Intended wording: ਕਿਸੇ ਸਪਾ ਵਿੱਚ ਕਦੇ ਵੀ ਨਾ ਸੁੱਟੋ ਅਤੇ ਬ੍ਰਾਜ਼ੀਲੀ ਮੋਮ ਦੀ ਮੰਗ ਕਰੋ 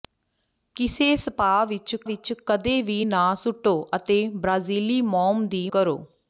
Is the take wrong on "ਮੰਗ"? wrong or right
wrong